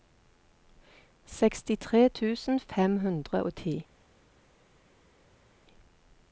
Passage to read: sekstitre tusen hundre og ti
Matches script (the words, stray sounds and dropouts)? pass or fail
fail